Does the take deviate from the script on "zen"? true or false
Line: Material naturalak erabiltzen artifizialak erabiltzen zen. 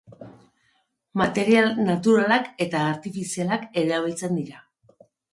true